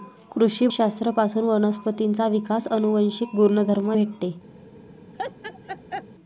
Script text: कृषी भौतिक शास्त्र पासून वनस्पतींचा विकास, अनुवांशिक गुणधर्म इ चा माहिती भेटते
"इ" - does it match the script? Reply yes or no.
no